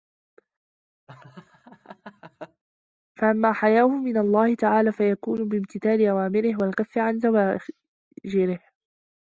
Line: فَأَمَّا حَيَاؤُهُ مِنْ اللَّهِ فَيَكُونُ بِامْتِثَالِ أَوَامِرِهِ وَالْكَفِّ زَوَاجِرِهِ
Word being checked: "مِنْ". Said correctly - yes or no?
yes